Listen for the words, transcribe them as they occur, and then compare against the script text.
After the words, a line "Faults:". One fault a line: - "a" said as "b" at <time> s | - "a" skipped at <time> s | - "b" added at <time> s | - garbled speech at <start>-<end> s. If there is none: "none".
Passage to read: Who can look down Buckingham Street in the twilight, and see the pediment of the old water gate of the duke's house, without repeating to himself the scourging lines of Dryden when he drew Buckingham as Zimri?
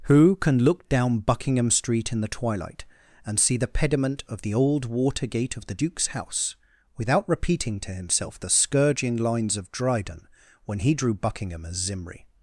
Who can look down Buckingham Street in the twilight, and see the pediment of the old water gate of the duke's house, without repeating to himself the scourging lines of Dryden when he drew Buckingham as Zimri?
Faults:
none